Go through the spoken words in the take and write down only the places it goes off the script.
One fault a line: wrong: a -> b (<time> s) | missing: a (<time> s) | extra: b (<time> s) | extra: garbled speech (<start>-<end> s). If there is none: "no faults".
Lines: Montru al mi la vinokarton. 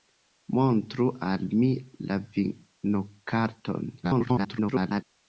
extra: garbled speech (4.0-5.0 s)